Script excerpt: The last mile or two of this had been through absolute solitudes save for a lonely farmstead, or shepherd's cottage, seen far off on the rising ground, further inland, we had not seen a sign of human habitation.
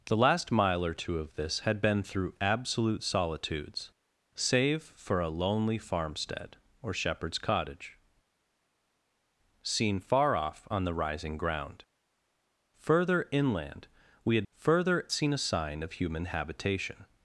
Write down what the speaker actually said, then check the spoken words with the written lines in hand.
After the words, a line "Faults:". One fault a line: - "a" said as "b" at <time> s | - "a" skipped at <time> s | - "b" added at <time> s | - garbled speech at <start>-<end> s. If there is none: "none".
The last mile or two of this had been through absolute solitudes save for a lonely farmstead, or shepherd's cottage, seen far off on the rising ground, further inland, we had further seen a sign of human habitation.
Faults:
- "not" said as "further" at 14.5 s